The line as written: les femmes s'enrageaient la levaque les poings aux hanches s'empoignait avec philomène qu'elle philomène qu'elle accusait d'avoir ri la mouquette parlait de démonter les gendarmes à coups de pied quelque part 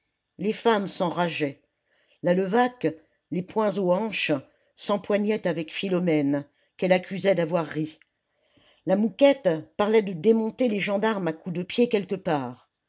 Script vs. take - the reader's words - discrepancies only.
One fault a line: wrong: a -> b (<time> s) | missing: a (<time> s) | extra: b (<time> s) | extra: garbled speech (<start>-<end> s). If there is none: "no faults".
missing: philomène qu'elle (6.9 s)